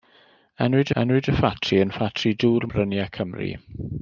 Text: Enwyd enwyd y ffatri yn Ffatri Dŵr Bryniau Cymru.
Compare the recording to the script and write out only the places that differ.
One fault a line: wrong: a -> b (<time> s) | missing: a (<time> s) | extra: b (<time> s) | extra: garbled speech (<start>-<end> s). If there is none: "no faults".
no faults